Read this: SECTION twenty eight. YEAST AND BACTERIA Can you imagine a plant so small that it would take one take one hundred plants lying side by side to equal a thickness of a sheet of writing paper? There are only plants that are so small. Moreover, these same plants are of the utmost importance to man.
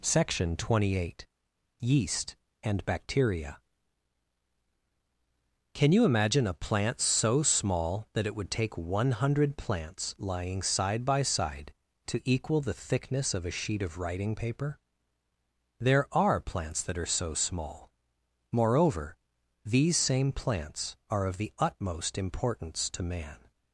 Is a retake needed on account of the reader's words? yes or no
yes